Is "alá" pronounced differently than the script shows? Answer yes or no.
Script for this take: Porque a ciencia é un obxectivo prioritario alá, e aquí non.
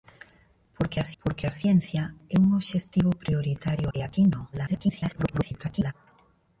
yes